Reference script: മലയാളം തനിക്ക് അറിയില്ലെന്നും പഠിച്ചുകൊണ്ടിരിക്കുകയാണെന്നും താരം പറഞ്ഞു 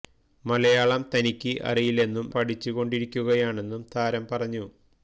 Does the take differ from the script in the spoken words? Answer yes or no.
no